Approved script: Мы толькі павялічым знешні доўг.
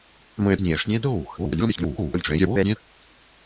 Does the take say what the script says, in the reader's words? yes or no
no